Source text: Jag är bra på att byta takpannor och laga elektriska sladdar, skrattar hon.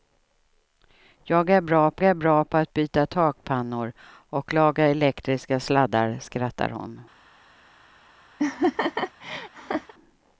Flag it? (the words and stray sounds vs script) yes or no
yes